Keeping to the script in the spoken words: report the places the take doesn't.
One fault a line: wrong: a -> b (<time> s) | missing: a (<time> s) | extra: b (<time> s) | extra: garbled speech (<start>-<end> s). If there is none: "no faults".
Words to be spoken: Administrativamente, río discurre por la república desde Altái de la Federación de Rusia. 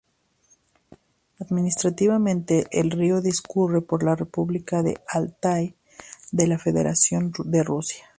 extra: el (2.7 s)
wrong: desde -> de (4.8 s)